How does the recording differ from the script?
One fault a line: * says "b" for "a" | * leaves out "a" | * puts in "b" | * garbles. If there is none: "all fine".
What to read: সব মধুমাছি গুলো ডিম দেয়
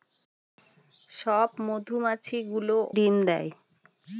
all fine